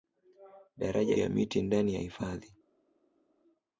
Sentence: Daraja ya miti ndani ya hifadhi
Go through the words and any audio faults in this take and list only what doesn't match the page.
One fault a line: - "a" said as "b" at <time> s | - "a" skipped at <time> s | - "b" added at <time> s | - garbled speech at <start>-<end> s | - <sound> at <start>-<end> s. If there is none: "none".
none